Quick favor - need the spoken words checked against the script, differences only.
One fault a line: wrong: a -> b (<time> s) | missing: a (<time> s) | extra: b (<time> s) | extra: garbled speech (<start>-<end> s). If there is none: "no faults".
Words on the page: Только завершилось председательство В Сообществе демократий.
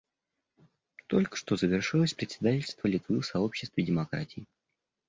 extra: что (1.4 s)
extra: Литвы (2.9 s)